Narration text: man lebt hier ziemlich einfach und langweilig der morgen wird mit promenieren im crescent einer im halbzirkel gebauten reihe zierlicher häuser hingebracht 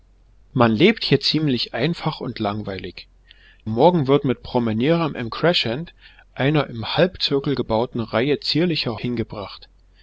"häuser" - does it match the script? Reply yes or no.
no